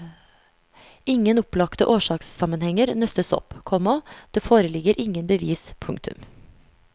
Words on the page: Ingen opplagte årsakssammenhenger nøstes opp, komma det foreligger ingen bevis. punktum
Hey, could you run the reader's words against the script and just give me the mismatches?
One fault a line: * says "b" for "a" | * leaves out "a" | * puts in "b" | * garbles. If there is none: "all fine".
all fine